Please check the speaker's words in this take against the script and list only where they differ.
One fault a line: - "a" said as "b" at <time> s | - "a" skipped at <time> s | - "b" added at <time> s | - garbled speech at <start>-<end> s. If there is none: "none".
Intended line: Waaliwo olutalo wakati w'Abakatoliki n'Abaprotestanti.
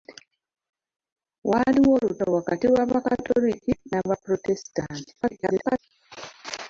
- garbled speech at 5.2-5.8 s